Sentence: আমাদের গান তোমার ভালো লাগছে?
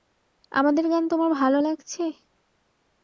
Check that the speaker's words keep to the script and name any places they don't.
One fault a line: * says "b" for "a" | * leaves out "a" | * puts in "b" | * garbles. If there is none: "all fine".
all fine